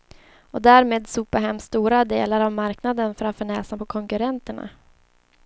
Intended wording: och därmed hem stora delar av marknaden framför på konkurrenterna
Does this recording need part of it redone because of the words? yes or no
yes